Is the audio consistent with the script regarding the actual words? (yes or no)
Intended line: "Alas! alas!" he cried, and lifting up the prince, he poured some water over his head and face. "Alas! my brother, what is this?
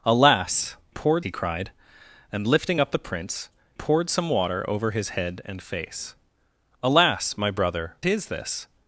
no